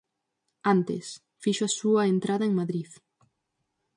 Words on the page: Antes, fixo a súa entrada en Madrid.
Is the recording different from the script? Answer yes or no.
no